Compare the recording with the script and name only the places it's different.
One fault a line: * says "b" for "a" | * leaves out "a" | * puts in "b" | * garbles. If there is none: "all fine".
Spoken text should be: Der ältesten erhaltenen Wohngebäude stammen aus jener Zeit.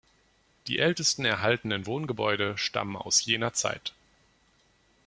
* says "Die" for "Der"